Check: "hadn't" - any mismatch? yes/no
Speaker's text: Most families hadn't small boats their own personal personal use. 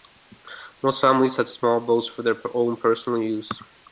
yes